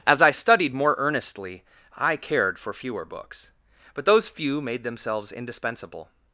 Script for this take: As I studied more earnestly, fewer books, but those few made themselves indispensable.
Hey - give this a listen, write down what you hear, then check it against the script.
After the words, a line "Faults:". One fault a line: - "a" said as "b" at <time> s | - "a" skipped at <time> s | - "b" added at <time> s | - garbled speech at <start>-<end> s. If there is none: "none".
As I studied more earnestly, I cared for fewer books, but those few made themselves indispensable.
Faults:
- "I cared for" added at 2.0 s